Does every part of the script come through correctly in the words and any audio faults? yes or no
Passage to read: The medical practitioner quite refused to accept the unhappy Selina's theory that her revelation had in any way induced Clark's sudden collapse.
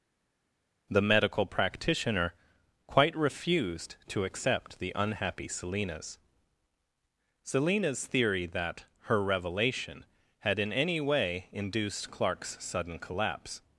no